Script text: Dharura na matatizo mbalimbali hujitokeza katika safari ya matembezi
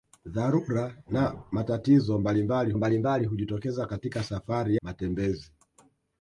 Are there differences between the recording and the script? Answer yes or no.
yes